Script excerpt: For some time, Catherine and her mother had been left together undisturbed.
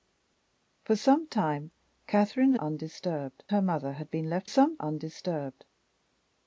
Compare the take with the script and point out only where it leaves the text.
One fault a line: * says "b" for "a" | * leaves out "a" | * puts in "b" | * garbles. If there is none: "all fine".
* says "undisturbed" for "and"
* says "some" for "together"